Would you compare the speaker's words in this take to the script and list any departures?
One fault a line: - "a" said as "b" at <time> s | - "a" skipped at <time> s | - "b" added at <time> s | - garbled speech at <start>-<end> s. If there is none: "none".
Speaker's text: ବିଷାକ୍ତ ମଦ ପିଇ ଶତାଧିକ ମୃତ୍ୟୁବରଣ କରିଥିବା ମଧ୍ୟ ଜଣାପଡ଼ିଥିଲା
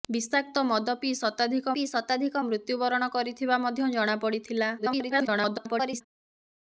- "ପିଇ ଶତାଧିକ" added at 1.7 s
- garbled speech at 4.8-6.0 s